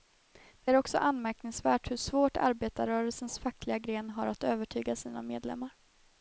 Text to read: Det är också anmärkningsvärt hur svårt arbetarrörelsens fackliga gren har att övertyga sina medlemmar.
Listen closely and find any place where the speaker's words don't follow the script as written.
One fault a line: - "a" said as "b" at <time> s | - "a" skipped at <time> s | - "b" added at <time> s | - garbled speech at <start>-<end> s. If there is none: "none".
none